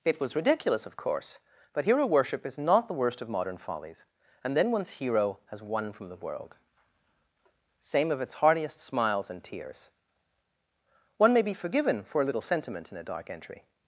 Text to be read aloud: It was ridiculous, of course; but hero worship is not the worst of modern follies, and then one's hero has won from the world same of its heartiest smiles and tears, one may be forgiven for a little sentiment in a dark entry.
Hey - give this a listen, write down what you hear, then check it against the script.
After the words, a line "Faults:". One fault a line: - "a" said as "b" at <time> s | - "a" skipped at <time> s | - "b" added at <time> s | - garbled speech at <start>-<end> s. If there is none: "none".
It was ridiculous, of course; but hero worship is not the worst of modern follies, and then one's hero has won from the world same of its heartiest smiles and tears, one may be forgiven for a little sentiment in a dark entry.
Faults:
none